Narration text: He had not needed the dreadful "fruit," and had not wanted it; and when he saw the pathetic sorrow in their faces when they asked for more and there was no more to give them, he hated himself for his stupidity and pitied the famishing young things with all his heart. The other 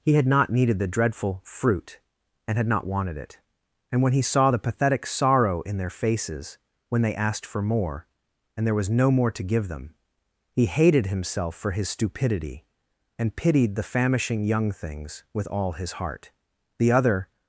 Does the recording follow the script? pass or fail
pass